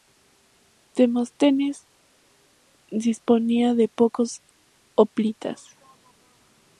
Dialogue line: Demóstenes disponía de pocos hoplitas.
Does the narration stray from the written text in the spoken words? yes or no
no